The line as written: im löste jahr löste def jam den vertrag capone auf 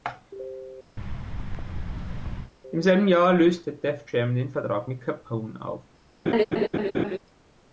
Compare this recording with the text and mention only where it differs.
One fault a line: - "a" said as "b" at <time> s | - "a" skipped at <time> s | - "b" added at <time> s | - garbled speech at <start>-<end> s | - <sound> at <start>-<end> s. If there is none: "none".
- thud at 1.0-2.5 s
- "löste" said as "selben" at 2.8 s
- "mit" added at 4.9 s
- laugh at 6.3-7.2 s